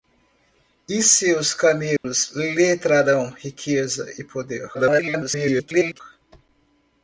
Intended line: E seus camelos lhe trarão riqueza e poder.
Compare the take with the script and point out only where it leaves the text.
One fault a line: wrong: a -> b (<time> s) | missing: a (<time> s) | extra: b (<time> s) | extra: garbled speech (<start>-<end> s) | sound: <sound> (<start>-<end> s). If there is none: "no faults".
sound: dropout (2.0-2.0 s)
extra: garbled speech (4.7-6.0 s)